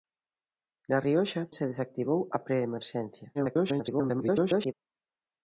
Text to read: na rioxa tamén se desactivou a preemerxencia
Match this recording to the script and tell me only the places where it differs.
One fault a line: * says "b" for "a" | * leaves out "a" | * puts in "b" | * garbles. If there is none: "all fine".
* leaves out "tamén"
* garbles